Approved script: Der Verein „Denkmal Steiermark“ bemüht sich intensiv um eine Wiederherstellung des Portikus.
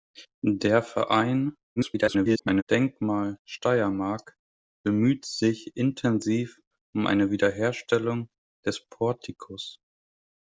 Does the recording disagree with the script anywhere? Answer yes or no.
yes